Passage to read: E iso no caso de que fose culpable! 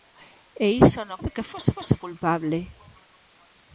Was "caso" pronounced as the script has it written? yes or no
no